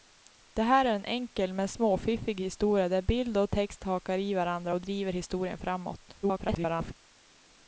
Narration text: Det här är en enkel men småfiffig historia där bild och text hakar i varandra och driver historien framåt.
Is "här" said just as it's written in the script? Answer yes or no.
yes